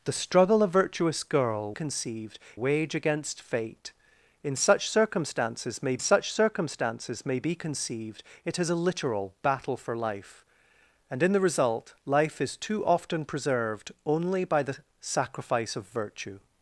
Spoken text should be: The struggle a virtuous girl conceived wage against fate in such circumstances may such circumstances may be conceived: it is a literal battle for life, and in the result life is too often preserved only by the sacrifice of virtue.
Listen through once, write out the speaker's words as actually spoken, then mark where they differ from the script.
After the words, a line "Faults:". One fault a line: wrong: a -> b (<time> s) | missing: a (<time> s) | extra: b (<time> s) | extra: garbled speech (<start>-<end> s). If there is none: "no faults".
The struggle a virtuous girl conceived wage against fate in such circumstances may such circumstances may be conceived: it is a literal battle for life, and in the result life is too often preserved only by the sacrifice of virtue.
Faults:
no faults